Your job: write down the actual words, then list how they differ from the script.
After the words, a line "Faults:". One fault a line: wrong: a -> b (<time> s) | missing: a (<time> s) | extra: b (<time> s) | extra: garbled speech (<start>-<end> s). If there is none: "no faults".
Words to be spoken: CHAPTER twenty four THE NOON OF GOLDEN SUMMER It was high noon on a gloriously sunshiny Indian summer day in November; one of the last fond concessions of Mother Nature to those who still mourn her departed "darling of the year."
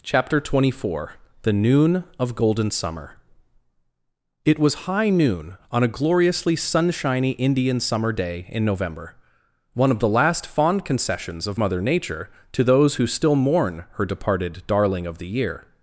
CHAPTER twenty four THE NOON OF GOLDEN SUMMER It was high noon on a gloriously sunshiny Indian summer day in November; one of the last fond concessions of Mother Nature to those who still mourn her departed "darling of the year."
Faults:
no faults